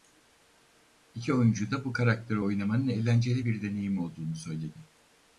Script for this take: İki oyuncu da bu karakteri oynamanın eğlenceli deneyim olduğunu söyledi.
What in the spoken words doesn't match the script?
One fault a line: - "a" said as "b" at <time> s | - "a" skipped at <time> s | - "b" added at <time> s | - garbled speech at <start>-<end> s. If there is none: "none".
- "bir" added at 3.4 s